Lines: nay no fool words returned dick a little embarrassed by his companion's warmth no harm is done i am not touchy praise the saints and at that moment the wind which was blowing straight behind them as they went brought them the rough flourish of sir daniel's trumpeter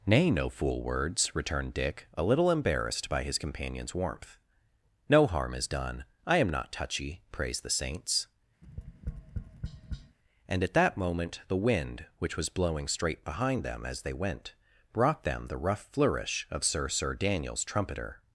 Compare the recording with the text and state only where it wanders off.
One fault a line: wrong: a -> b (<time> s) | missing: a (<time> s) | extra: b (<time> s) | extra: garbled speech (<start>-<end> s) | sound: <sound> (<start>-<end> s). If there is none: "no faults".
sound: tap (8.6-10.2 s)
extra: sir (16.9 s)